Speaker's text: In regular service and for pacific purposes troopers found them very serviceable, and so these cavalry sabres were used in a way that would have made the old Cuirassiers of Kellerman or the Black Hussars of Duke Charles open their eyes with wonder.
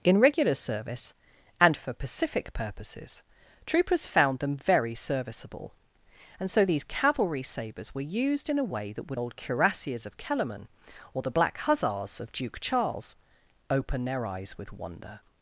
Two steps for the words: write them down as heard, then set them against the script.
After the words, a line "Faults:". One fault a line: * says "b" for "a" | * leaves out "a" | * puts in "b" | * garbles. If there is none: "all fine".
In regular service and for pacific purposes troopers found them very serviceable, and so these cavalry sabres were used in a way that would old Cuirassiers of Kellerman or the Black Hussars of Duke Charles open their eyes with wonder.
Faults:
* leaves out "have made the"